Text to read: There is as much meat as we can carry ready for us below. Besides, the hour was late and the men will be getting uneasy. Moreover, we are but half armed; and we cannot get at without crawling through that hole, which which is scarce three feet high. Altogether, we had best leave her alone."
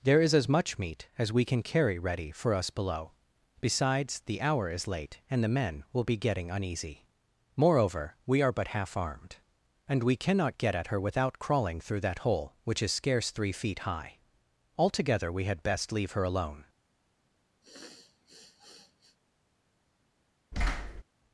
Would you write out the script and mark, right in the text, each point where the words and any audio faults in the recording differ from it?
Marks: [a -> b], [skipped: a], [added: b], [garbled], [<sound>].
There is as much meat as we can carry ready for us below. Besides, the hour [was -> is] late and the men will be getting uneasy. Moreover, we are but half armed; and we cannot get at [added: her] without crawling through that hole, which [skipped: which] is scarce three feet high. Altogether, we had best leave her alone." [sniff] [thud]